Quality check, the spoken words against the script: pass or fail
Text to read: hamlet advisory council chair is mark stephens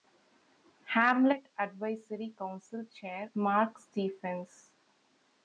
fail